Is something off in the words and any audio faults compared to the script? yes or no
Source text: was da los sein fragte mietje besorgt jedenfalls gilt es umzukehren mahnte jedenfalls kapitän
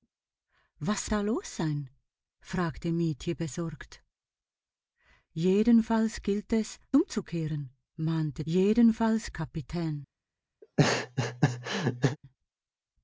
yes